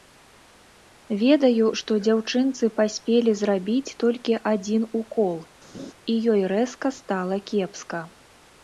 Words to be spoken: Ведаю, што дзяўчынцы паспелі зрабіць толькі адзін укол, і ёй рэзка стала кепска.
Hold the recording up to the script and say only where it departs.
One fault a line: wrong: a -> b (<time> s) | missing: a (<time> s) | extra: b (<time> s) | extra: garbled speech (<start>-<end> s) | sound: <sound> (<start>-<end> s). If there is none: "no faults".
sound: laugh (5.7-5.9 s)